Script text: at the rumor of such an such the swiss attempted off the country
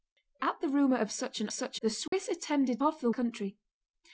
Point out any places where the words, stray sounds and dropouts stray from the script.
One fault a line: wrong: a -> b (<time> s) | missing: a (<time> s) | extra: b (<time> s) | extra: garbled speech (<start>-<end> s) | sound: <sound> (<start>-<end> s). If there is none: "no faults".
sound: dropout (2.1-2.1 s)